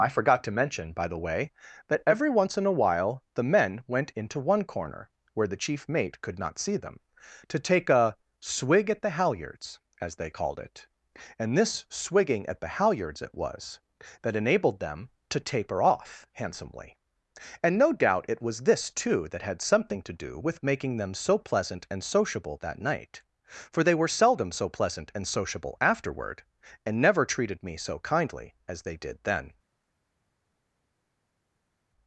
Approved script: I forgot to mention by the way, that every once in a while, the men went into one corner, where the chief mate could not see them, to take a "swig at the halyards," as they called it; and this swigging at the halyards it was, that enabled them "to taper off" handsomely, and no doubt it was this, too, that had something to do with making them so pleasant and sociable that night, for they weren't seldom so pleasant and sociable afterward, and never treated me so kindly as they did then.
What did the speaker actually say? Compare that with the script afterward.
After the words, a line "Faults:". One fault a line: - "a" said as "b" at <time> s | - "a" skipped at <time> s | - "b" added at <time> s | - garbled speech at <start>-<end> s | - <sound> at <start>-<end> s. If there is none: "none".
I forgot to mention by the way, that every once in a while, the men went into one corner, where the chief mate could not see them, to take a "swig at the halyards," as they called it; and this swigging at the halyards it was, that enabled them "to taper off" handsomely, and no doubt it was this, too, that had something to do with making them so pleasant and sociable that night, for they were seldom so pleasant and sociable afterward, and never treated me so kindly as they did then.
Faults:
- "weren't" said as "were" at 23.9 s